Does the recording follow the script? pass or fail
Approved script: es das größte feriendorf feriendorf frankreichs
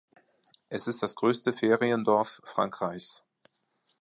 fail